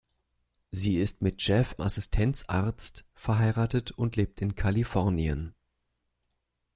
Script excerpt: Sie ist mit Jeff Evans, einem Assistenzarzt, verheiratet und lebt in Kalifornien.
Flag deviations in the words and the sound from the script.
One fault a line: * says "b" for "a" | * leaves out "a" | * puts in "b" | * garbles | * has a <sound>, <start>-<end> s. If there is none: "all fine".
* leaves out "Evans einem"